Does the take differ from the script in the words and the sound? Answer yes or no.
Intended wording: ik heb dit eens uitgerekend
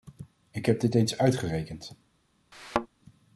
yes